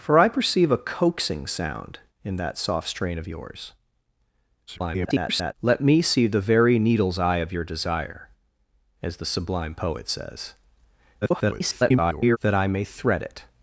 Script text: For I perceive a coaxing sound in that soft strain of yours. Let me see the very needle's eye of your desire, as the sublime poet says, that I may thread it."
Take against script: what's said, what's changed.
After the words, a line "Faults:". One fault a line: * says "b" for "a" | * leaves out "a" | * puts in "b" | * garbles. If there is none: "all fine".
For I perceive a coaxing sound in that soft strain of yours. [garbled] Let me see the very needle's eye of your desire, as the sublime poet says, [garbled] that I may thread it."
Faults:
* garbles
* garbles